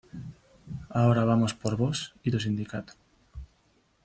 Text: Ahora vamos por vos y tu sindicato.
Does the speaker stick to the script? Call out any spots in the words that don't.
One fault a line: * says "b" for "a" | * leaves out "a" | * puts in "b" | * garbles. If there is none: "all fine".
all fine